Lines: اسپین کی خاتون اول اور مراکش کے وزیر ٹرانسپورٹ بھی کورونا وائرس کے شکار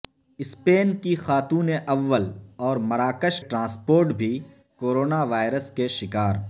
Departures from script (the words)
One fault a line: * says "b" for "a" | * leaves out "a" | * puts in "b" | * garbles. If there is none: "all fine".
* leaves out "کے وزیر"